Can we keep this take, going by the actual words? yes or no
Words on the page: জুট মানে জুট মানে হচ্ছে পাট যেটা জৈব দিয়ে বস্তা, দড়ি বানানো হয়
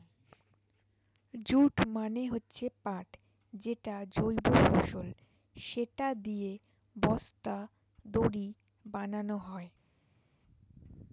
no